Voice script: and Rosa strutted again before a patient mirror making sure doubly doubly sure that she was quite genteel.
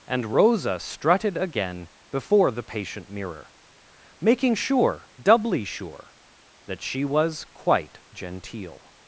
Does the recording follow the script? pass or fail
fail